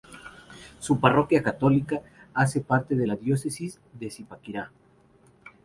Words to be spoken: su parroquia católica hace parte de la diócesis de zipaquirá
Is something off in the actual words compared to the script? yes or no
no